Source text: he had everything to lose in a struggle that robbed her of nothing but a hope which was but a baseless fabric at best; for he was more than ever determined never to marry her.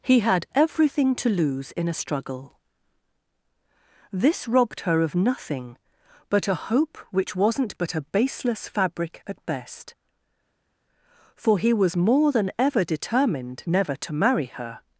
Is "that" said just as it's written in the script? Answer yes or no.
no